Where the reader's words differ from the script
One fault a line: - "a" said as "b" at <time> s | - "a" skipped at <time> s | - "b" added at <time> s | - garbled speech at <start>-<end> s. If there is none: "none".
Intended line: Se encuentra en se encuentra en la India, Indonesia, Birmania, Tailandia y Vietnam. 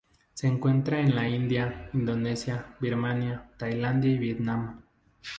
- "se encuentra en" skipped at 1.1 s